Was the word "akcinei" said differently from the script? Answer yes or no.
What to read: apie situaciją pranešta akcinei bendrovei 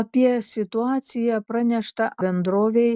yes